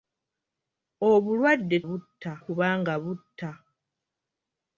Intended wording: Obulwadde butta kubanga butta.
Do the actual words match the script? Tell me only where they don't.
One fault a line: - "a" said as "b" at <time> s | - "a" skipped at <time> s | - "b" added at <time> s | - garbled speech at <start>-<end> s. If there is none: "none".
none